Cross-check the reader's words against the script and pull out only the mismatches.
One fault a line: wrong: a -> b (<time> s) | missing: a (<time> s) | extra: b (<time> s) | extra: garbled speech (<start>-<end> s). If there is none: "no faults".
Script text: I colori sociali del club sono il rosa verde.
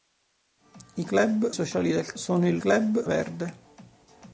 wrong: colori -> club (1.1 s)
missing: club (2.1 s)
wrong: rosa -> club (2.6 s)